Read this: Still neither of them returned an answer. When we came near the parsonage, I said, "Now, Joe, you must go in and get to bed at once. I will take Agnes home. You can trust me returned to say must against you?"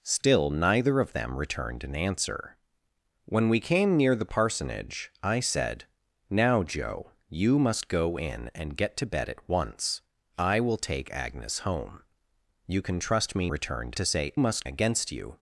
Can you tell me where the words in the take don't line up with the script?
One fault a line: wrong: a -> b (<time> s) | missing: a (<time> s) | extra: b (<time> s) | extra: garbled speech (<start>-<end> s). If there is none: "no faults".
no faults